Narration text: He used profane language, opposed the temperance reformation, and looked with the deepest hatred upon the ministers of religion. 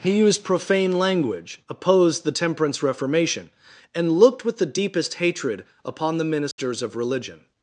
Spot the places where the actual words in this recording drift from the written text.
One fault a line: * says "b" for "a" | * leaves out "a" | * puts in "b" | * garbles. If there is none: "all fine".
all fine